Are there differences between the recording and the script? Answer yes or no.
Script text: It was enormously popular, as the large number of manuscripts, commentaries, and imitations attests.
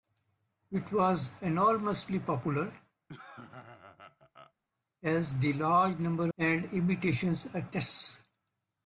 yes